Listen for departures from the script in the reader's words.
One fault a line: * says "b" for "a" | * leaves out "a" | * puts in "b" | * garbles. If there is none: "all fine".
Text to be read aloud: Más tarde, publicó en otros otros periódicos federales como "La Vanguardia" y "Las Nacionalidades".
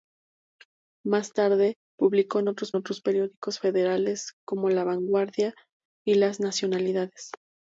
all fine